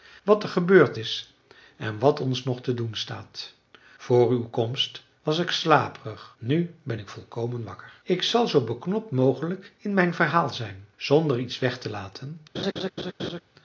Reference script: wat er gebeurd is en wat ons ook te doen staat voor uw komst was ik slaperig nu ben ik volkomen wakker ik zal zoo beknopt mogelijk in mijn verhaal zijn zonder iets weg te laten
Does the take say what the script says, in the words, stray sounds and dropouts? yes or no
no